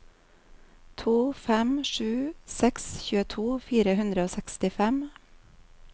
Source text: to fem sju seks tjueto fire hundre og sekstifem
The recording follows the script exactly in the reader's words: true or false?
true